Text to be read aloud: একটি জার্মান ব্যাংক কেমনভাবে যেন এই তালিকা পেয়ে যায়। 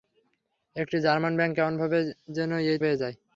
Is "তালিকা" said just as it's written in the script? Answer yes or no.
no